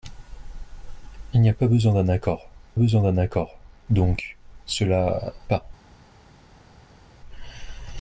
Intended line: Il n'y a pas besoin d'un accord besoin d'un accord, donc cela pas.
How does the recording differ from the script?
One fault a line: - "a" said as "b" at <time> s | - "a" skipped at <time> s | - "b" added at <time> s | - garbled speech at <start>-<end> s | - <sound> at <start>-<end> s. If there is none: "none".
none